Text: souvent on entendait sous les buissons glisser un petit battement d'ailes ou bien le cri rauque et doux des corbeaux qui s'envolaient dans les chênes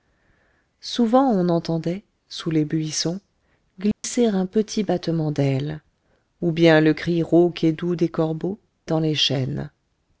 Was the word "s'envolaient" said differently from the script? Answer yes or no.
yes